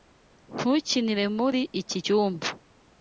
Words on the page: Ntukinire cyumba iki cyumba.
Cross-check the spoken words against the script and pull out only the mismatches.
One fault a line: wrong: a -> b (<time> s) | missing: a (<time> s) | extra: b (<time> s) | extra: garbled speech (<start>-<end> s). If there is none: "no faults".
wrong: cyumba -> muri (1.4 s)